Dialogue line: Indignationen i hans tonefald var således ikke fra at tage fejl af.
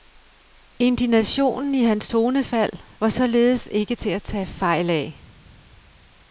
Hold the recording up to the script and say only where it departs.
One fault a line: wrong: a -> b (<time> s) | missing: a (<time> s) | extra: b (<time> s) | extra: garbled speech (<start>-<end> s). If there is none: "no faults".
wrong: fra -> til (3.9 s)